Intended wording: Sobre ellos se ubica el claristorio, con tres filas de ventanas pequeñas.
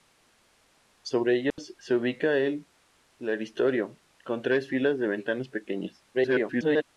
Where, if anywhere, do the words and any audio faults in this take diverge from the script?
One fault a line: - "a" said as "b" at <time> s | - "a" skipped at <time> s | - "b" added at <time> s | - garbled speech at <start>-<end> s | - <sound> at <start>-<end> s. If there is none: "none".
- dropout at 1.5-1.6 s
- garbled speech at 6.1-6.8 s